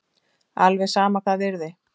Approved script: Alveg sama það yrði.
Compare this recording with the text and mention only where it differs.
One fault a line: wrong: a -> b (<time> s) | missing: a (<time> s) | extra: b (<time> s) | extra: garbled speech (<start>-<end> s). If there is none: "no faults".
no faults